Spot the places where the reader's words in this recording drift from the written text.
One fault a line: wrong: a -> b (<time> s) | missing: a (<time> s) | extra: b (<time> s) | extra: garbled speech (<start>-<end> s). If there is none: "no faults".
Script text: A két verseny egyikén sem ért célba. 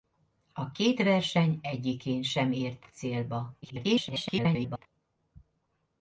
extra: garbled speech (3.6-4.9 s)